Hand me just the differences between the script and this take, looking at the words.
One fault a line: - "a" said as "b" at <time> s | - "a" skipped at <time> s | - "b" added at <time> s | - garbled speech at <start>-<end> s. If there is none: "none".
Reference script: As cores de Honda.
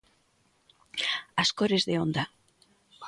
none